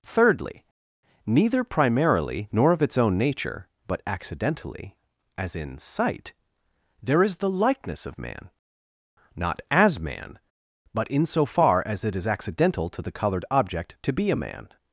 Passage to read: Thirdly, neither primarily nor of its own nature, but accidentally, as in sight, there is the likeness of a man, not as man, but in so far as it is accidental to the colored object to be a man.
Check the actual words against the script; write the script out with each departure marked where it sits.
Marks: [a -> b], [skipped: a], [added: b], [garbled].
Thirdly, neither primarily nor of its own nature, but accidentally, as in sight, there is the likeness of [skipped: a] man, not as man, but in so far as it is accidental to the colored object to be a man.